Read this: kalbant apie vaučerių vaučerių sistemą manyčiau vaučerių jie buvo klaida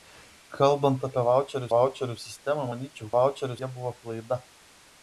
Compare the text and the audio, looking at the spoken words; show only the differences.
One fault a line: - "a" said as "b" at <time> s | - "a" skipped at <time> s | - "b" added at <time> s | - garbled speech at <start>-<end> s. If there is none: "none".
none